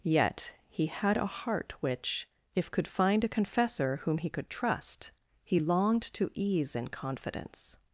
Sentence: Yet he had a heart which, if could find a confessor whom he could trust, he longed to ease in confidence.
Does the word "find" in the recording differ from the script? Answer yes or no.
no